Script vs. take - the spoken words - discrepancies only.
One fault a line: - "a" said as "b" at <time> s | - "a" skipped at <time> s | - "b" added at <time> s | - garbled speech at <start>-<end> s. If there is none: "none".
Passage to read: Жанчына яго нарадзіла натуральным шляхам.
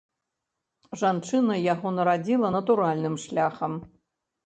none